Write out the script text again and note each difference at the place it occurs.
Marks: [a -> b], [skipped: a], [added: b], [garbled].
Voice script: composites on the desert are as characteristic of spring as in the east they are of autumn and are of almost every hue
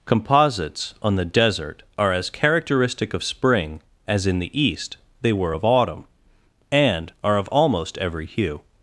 composites on the desert are as characteristic of spring as in the east they [are -> were] of autumn and are of almost every hue